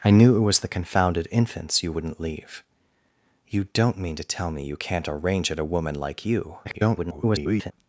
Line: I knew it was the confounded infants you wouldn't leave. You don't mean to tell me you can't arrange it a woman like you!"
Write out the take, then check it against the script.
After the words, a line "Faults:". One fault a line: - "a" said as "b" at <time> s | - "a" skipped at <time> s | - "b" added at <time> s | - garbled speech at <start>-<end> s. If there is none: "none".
I knew it was the confounded infants you wouldn't leave. You don't mean to tell me you can't arrange it a woman like you!" [garbled]
Faults:
- garbled speech at 6.6-7.7 s